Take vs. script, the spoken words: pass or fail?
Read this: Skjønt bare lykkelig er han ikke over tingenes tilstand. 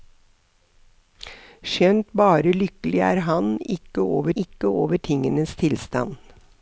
fail